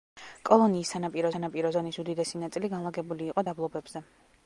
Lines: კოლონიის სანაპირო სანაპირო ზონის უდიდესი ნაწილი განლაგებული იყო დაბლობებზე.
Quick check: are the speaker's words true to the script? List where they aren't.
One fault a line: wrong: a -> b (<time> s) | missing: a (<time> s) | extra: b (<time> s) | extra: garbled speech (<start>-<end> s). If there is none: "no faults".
no faults